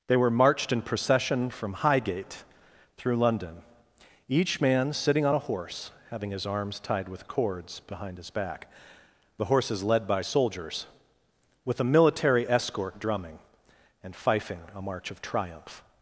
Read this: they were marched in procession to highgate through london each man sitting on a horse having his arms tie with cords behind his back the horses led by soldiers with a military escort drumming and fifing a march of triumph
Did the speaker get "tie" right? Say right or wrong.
wrong